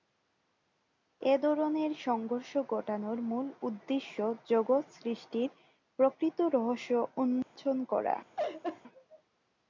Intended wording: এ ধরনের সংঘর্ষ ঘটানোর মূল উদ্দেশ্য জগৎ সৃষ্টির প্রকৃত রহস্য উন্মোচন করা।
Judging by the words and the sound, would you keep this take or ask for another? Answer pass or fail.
fail